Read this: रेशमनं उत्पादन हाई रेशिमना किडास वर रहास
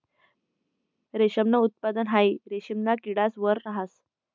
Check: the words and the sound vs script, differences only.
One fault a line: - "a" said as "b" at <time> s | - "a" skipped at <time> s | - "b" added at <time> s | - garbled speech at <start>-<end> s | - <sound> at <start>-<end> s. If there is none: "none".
none